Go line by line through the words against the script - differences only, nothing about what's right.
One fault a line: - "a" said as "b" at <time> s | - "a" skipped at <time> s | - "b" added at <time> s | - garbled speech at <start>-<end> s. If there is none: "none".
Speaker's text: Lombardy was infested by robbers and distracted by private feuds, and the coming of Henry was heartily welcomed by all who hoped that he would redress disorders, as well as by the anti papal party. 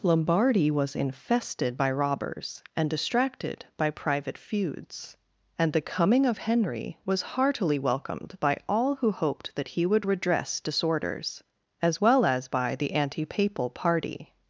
none